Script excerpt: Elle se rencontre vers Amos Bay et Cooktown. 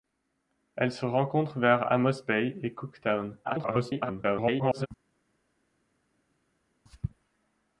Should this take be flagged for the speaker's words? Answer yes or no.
yes